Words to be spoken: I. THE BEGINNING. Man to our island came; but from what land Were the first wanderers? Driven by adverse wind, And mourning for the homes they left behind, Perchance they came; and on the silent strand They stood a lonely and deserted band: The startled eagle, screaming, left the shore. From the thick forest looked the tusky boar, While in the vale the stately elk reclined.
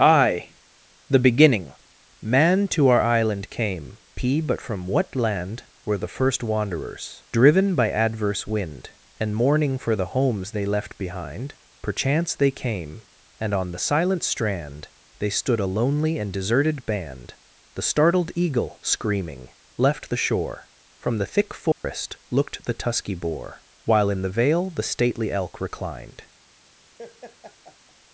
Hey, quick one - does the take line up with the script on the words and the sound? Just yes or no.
no